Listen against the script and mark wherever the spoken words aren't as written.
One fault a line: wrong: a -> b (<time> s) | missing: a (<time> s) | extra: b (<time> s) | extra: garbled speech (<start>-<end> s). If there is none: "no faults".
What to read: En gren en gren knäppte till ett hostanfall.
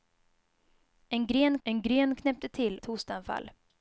no faults